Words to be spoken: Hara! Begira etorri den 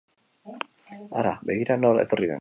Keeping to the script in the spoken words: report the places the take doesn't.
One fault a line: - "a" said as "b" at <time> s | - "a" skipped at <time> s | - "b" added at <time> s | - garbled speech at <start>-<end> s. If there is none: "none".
- "nor" added at 1.8 s